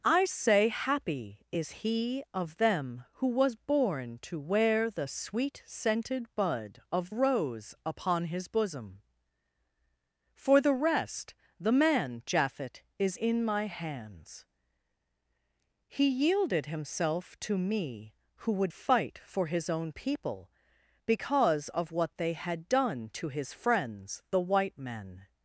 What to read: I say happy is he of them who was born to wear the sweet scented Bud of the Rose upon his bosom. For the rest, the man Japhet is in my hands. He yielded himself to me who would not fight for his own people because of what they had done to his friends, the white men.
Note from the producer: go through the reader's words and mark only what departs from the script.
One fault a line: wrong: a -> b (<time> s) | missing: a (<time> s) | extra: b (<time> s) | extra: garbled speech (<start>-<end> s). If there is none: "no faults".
missing: the (7.1 s)
missing: not (18.7 s)